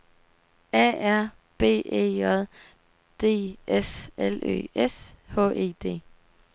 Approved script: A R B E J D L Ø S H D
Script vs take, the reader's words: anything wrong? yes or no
yes